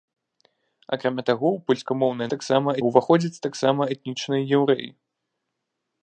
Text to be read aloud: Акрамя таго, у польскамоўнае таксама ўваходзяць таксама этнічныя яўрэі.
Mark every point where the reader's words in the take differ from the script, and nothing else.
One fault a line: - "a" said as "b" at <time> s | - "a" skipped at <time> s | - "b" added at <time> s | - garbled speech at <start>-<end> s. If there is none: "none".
none